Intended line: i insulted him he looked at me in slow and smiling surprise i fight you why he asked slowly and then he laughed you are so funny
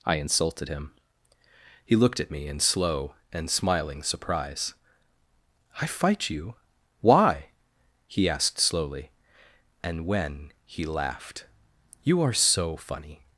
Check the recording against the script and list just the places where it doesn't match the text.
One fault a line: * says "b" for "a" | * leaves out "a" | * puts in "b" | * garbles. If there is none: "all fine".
* says "when" for "then"